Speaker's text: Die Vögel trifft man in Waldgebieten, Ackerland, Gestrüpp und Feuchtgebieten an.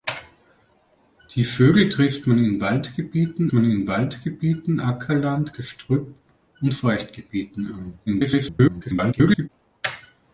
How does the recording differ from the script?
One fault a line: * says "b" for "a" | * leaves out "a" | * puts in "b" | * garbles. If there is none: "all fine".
* puts in "man in Waldgebieten"
* garbles